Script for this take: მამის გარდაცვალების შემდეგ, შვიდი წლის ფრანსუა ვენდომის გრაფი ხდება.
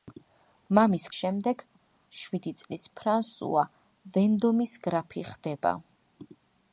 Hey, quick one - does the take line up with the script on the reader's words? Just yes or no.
no